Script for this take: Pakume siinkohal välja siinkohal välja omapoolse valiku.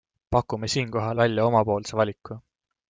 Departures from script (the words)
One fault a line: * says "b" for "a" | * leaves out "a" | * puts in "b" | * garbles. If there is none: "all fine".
* leaves out "siinkohal välja"